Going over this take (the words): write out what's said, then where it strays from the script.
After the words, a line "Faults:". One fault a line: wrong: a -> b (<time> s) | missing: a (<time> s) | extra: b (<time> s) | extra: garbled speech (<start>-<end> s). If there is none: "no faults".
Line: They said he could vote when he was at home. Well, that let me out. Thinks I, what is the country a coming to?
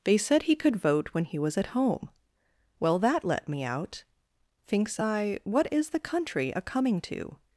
They said he could vote when he was at home. Well, that let me out. Thinks I, what is the country a coming to?
Faults:
no faults